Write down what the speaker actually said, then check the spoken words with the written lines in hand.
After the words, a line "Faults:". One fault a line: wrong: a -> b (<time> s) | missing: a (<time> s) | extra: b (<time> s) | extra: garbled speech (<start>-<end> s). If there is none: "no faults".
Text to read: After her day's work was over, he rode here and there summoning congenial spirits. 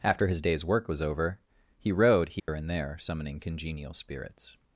After his day's work was over, he rode here and there summoning congenial spirits.
Faults:
wrong: her -> his (0.3 s)